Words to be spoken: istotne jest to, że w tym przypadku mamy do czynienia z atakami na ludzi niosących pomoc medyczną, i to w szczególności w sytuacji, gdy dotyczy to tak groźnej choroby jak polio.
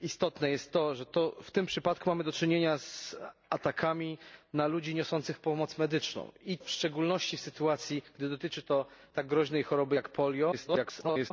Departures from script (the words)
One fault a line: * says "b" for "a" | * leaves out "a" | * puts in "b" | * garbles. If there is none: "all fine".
* leaves out "to"
* garbles